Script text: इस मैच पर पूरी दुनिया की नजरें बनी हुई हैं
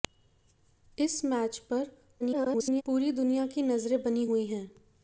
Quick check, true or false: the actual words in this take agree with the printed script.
false